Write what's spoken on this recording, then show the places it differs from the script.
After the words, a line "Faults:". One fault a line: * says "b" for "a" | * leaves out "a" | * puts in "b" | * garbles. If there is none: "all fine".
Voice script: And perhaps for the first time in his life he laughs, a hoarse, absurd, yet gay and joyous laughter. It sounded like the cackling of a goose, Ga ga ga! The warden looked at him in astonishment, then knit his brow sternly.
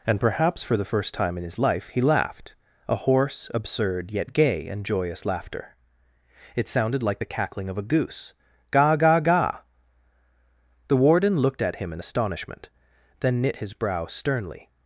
And perhaps for the first time in his life he laughed, a hoarse, absurd, yet gay and joyous laughter. It sounded like the cackling of a goose, Ga ga ga! The warden looked at him in astonishment, then knit his brow sternly.
Faults:
* says "laughed" for "laughs"